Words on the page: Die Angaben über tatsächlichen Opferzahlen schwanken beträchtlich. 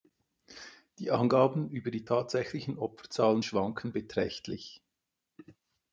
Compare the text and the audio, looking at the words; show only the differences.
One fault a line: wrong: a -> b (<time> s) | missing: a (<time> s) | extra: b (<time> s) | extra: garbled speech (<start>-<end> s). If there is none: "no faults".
extra: die (1.9 s)